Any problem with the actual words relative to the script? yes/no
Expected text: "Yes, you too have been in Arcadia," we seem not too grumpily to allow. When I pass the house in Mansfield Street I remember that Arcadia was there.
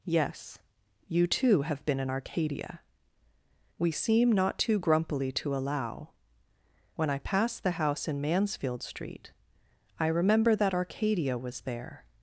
no